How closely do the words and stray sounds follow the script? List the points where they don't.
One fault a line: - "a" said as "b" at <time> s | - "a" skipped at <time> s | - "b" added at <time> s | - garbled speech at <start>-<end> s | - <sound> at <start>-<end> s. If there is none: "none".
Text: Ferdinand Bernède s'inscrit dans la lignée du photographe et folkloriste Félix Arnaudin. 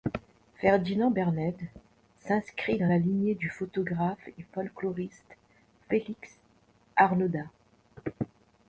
none